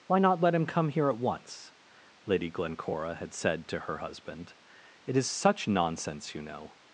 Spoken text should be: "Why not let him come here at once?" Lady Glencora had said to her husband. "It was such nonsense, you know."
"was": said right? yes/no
no